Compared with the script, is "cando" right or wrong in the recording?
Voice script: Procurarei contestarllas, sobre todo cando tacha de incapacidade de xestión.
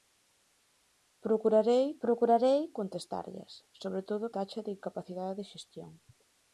wrong